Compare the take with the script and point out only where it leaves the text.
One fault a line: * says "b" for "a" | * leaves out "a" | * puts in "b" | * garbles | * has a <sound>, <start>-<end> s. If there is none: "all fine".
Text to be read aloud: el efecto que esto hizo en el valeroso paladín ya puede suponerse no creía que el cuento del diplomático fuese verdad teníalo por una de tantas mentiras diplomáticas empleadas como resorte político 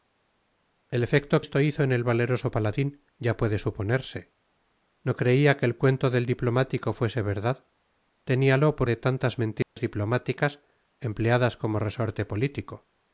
* leaves out "que"
* leaves out "una"
* has a dropout, 9.6-9.8 s